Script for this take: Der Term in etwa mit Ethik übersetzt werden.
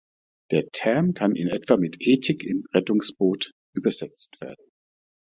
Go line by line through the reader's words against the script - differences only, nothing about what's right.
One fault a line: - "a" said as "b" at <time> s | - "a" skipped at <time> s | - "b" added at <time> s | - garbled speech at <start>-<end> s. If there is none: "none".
- "kann" added at 1.1 s
- "im Rettungsboot" added at 2.4 s